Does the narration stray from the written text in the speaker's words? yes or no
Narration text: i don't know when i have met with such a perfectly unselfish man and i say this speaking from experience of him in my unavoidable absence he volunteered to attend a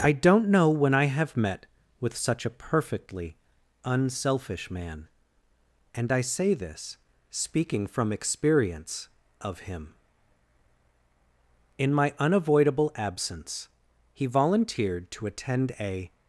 no